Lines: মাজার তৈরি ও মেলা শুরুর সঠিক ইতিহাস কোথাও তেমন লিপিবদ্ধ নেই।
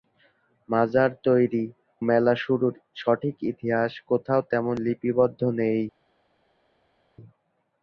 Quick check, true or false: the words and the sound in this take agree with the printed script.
false